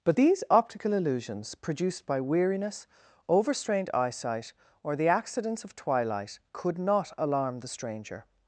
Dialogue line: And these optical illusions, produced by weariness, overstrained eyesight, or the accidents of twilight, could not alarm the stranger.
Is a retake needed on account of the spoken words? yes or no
yes